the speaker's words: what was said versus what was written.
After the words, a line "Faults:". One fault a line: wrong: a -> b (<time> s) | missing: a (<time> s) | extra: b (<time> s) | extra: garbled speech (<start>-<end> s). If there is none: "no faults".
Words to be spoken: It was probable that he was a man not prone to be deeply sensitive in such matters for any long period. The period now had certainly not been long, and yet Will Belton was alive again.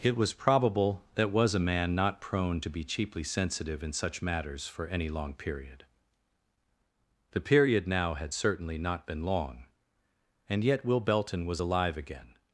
It was probable that was a man not prone to be cheaply sensitive in such matters for any long period. The period now had certainly not been long, and yet Will Belton was alive again.
Faults:
missing: he (1.3 s)
wrong: deeply -> cheaply (2.8 s)